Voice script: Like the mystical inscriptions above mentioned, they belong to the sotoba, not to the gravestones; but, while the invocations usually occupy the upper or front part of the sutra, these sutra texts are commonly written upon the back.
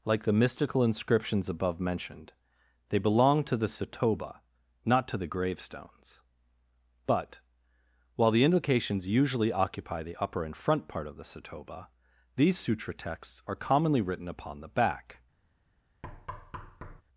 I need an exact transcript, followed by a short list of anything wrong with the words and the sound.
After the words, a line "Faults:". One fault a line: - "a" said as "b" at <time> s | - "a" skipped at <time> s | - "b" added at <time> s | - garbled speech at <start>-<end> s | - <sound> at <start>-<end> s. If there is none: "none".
Like the mystical inscriptions above mentioned, they belong to the sotoba, not to the gravestones; but, while the invocations usually occupy the upper and front part of the sotoba, these sutra texts are commonly written upon the back.
Faults:
- "or" said as "and" at 10.4 s
- "sutra" said as "sotoba" at 11.2 s
- thud at 16.0-17.0 s